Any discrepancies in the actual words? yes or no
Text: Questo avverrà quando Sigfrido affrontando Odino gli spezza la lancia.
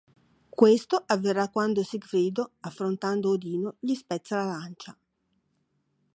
no